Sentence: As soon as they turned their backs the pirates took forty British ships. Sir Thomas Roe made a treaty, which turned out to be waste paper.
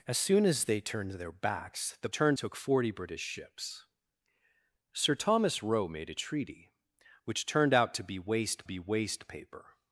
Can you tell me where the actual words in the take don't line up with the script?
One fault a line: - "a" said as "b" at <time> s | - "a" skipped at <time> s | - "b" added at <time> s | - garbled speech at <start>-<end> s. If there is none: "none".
- "pirates" said as "turned" at 2.1 s
- "be waste" added at 8.6 s